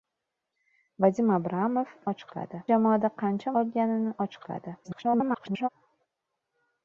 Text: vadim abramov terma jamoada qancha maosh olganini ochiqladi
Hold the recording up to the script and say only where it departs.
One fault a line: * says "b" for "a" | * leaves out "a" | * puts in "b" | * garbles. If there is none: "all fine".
* says "ochiqladi" for "terma"
* leaves out "maosh"
* garbles